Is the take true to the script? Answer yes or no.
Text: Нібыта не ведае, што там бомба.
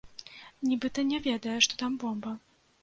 yes